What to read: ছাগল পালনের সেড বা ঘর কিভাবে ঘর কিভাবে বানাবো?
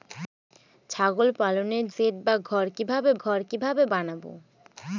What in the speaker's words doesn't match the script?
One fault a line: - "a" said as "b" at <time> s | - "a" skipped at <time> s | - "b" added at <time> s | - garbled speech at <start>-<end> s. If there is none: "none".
none